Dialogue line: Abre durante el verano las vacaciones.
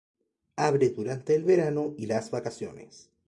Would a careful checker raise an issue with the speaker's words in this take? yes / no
yes